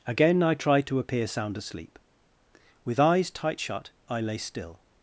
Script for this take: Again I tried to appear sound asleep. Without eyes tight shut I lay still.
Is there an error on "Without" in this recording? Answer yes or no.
yes